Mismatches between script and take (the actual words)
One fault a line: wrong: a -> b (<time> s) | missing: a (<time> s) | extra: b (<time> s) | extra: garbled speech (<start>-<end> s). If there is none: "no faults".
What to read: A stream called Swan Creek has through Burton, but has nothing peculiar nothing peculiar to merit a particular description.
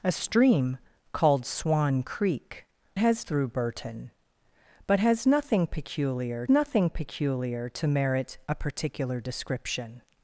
no faults